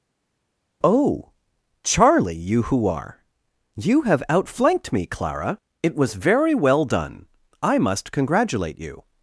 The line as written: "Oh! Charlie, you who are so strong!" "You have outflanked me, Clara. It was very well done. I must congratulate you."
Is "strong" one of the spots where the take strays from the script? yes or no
yes